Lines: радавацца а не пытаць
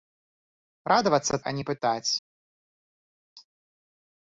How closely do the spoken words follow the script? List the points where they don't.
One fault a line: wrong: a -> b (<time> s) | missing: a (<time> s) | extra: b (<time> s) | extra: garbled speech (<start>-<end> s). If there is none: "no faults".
no faults